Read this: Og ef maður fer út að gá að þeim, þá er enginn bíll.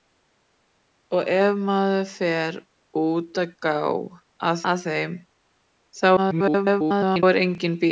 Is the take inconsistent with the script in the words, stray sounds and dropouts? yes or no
yes